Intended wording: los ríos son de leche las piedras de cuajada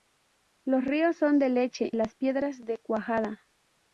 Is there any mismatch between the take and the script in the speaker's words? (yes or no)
no